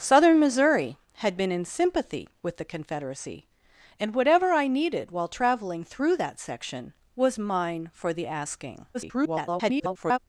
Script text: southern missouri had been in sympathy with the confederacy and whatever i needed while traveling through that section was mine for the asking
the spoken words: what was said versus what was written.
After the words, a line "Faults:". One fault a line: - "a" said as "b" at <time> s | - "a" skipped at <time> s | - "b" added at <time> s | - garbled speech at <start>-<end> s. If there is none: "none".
southern missouri had been in sympathy with the confederacy and whatever i needed while traveling through that section was mine for the asking [garbled]
Faults:
- garbled speech at 8.9-10.2 s